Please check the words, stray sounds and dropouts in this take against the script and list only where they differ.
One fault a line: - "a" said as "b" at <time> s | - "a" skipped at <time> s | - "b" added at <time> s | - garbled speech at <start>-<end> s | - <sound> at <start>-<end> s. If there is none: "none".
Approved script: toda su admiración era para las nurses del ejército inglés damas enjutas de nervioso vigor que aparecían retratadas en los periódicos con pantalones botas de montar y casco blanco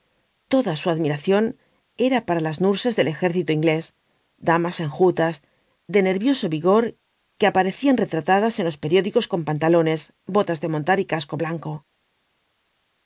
none